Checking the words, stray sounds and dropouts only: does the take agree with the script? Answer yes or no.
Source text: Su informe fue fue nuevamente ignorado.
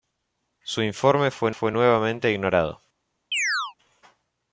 no